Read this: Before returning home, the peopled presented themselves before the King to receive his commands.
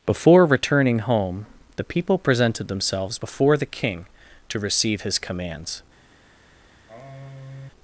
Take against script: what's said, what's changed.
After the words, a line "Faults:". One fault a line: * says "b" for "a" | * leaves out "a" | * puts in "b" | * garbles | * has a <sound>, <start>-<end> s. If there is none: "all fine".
Before returning home, the people presented themselves before the King to receive his commands.
Faults:
* says "people" for "peopled"
* has a sigh, 6.9-7.7 s